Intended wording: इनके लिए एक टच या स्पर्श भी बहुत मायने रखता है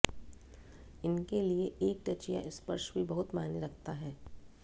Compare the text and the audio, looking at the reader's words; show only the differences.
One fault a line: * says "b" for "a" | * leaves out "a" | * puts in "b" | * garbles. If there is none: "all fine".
all fine